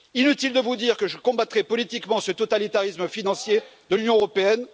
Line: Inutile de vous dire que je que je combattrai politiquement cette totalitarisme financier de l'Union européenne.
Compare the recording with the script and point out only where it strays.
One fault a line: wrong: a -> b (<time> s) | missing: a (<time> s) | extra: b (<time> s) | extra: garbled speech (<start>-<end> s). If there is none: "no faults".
missing: que je (1.2 s)
wrong: cette -> ce (2.2 s)